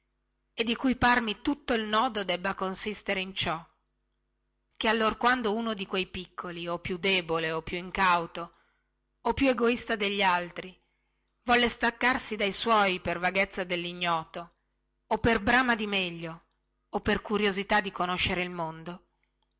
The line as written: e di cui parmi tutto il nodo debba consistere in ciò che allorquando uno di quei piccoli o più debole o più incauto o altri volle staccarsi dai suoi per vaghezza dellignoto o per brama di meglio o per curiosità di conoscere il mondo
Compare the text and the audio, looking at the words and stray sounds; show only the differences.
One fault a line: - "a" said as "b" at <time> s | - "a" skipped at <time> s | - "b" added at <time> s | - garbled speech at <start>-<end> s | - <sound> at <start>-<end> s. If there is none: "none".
- "più egoista degli" added at 9.3 s